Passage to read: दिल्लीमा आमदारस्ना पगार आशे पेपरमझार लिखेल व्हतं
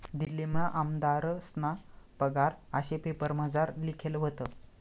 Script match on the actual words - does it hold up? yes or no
yes